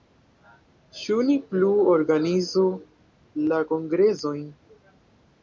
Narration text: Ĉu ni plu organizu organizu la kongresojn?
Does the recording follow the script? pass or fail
fail